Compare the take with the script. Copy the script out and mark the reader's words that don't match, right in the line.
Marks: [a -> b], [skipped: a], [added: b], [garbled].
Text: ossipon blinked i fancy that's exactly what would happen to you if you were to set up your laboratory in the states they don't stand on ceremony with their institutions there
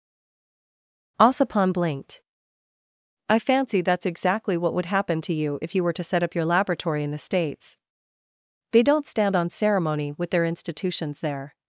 ossipon blinked i fancy that's exactly what would happen to you if you were to set up your laboratory in the states they don't stand on ceremony with their institutions there